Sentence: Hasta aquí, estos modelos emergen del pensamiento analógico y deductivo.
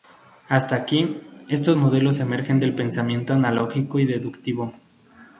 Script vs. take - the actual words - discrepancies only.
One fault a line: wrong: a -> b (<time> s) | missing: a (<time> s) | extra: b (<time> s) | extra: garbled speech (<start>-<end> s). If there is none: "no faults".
no faults